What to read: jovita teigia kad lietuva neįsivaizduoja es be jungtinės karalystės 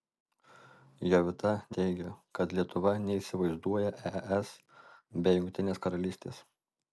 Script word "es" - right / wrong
right